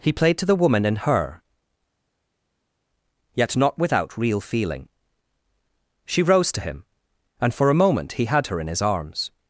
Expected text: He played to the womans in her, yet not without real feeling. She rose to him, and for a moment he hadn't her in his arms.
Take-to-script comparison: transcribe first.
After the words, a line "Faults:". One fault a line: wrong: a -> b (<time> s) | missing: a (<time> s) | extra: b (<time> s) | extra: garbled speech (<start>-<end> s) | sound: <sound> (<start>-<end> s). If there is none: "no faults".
He played to the woman in her, yet not without real feeling. She rose to him, and for a moment he had her in his arms.
Faults:
wrong: womans -> woman (0.6 s)
wrong: hadn't -> had (8.3 s)